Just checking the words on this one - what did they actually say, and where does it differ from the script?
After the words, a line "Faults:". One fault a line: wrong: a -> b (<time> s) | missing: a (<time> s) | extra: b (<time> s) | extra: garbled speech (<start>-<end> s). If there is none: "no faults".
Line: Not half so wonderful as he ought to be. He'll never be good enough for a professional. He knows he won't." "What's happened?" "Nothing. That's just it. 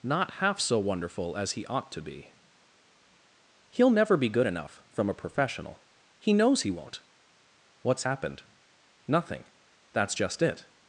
Not half so wonderful as he ought to be. He'll never be good enough from a professional. He knows he won't." "What's happened?" "Nothing. That's just it.
Faults:
wrong: for -> from (4.9 s)